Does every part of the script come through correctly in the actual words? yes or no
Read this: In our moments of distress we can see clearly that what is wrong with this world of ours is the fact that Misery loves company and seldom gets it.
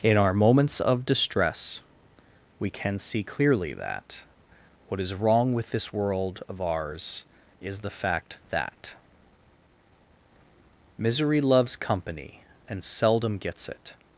yes